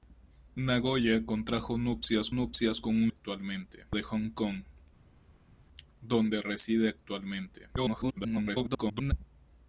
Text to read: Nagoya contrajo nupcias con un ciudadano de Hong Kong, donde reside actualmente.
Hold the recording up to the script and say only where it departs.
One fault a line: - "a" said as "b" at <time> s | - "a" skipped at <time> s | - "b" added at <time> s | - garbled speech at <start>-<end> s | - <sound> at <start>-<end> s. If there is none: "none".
- "nupcias" added at 2.3 s
- "ciudadano" said as "actualmente" at 3.1 s
- garbled speech at 7.8-9.1 s